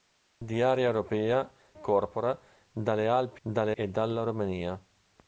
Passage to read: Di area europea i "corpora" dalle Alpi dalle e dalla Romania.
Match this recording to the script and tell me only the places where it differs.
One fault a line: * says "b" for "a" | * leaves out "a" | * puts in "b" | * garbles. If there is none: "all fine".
all fine